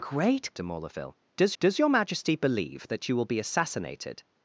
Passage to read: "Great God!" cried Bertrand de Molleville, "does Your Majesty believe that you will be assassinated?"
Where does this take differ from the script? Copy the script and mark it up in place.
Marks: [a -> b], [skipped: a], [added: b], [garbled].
"Great [skipped: God!" cried Bertrand] de Molleville, "does [added: does] Your Majesty believe that you will be assassinated?"